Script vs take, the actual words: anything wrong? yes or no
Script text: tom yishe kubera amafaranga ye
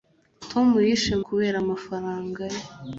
no